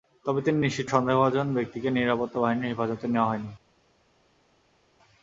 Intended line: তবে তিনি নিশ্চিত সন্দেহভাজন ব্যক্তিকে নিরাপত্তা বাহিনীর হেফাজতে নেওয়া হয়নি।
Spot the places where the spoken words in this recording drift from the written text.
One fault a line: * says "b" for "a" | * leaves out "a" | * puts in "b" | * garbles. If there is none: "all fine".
all fine